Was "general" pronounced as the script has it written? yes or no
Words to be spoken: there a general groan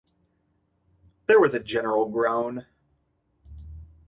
yes